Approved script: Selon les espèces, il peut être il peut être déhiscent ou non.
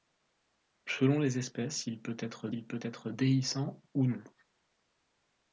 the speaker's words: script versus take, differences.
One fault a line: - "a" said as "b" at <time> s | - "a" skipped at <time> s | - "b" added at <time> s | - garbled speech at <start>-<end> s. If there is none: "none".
none